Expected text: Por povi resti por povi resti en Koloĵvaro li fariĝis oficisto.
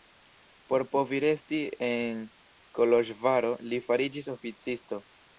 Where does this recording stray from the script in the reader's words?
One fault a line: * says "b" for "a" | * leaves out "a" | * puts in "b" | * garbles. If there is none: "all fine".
* leaves out "por povi resti"